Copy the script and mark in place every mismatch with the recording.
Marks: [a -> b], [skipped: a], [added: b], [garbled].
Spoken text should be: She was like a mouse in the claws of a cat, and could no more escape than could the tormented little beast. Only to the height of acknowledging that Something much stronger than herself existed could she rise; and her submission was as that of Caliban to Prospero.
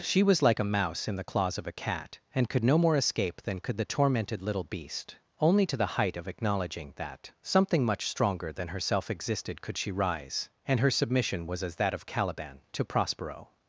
She was like a mouse in the claws of a cat, and could no more escape than could the tormented little beast. Only to the height of acknowledging that Something much stronger than herself existed could she rise; and her submission was as that of Caliban to Prospero.